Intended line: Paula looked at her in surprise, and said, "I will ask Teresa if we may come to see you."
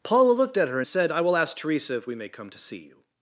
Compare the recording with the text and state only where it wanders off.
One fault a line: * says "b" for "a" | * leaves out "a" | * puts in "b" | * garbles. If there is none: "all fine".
* leaves out "in surprise and"